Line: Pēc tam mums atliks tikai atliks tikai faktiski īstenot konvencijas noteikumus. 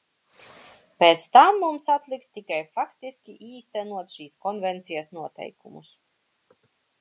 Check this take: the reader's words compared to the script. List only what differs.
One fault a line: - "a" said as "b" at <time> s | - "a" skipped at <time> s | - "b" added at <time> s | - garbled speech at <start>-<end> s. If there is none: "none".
- "atliks tikai" skipped at 2.6 s
- "šīs" added at 4.2 s